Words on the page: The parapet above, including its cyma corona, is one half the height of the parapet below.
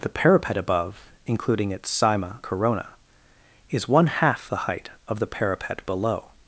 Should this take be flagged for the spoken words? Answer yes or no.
no